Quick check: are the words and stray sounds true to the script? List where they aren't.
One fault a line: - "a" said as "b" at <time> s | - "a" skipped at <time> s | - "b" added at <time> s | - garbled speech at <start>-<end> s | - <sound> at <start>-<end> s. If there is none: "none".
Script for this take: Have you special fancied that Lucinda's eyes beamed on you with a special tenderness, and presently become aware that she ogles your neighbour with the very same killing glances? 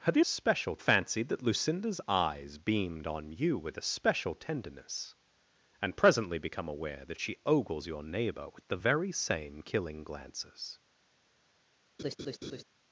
- laugh at 12.0-12.6 s